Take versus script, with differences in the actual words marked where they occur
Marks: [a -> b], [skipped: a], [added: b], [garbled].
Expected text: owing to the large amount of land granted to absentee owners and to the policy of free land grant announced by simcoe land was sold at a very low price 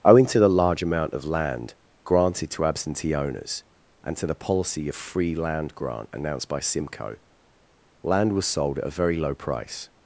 owing to the large amount of land granted to absentee owners and to the policy of free land grant announced by simcoe land was sold at a very low price